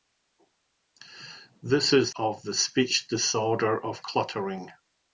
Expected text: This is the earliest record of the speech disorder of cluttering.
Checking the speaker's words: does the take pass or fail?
fail